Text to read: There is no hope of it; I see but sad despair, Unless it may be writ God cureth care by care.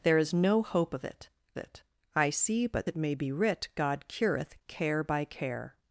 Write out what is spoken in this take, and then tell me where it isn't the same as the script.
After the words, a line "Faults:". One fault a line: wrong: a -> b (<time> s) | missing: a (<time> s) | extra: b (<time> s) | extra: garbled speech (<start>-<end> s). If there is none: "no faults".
There is no hope of it it; I see but it may be writ God cureth care by care.
Faults:
extra: it (1.6 s)
missing: sad despair Unless (2.9 s)